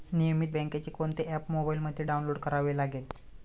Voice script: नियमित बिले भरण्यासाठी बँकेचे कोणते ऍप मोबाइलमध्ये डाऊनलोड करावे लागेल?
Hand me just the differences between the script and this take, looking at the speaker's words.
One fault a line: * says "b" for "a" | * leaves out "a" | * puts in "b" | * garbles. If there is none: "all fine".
* leaves out "बिले भरण्यासाठी"